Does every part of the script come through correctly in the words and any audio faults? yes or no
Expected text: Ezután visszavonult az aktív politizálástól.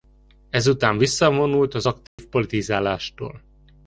no